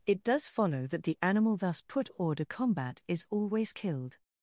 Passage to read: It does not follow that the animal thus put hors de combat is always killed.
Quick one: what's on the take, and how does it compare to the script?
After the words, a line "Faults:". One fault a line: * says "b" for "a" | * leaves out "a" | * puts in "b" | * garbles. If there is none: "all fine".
It does follow that the animal thus put hors de combat is always killed.
Faults:
* leaves out "not"